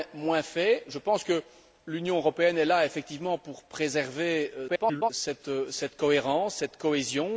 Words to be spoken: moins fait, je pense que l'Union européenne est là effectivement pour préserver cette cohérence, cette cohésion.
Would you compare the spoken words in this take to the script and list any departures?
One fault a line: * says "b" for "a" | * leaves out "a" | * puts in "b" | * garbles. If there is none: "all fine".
* garbles